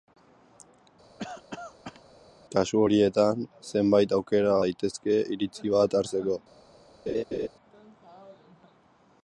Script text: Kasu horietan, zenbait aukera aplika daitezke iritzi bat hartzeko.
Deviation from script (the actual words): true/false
true